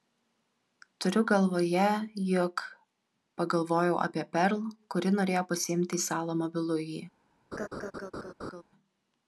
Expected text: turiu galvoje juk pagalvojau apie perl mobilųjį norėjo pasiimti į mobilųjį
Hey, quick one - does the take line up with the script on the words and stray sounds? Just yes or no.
no